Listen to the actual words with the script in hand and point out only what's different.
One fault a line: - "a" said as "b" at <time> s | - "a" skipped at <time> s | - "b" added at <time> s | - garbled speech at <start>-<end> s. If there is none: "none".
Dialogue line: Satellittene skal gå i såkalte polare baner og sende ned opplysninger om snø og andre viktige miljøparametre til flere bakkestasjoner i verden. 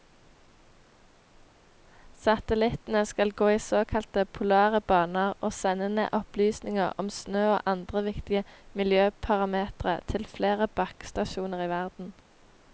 none